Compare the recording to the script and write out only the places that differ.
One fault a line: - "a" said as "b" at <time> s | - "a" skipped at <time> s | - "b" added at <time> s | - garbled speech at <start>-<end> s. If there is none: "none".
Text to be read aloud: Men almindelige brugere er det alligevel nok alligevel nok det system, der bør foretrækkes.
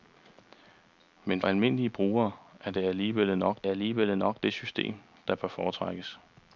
none